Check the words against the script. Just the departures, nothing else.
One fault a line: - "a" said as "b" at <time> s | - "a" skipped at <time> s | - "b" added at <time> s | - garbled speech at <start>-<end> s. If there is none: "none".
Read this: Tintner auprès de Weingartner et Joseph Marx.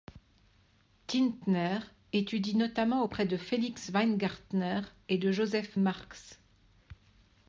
- "étudie notamment" added at 2.1 s
- "Felix" added at 3.3 s
- "de" added at 5.2 s